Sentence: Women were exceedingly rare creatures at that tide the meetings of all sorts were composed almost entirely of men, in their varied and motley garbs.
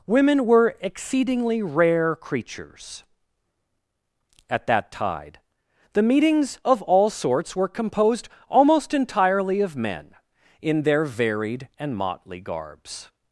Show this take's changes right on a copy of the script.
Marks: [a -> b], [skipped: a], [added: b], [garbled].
Women were exceedingly rare creatures at that tide the meetings of all sorts were composed almost entirely of men, in their varied and motley garbs.